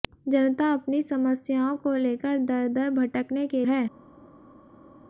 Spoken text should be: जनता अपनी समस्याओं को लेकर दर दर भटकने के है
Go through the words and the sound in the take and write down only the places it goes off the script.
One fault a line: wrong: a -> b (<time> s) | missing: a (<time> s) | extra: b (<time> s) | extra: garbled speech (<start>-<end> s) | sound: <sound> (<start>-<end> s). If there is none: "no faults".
no faults